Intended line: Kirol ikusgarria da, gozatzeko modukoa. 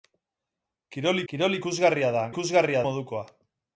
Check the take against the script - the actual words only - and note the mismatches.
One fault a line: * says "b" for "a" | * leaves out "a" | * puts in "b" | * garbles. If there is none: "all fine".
* puts in "kirol"
* says "ikusgarria" for "gozatzeko"